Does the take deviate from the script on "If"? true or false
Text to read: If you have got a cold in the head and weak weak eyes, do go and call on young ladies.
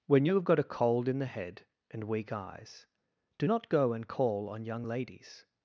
true